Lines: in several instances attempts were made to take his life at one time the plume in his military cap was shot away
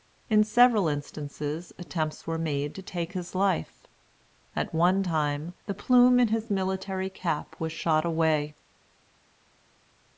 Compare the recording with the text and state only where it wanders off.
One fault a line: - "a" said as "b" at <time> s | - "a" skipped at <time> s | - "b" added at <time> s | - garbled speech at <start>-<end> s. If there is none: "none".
none